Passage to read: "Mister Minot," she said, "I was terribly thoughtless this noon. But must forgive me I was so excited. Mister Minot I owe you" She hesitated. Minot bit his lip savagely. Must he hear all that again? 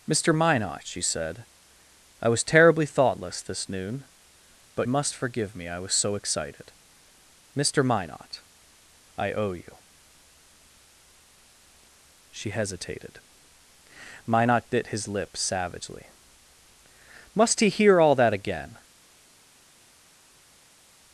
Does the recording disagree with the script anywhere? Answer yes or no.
no